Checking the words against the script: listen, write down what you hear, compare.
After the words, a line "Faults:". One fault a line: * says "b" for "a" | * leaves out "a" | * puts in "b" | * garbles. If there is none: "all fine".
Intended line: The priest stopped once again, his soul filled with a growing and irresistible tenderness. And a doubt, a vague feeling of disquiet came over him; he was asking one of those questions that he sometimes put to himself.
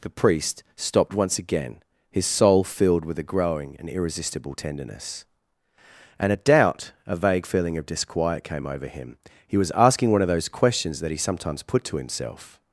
The priest stopped once again, his soul filled with a growing and irresistible tenderness. And a doubt, a vague feeling of disquiet came over him; he was asking one of those questions that he sometimes put to himself.
Faults:
all fine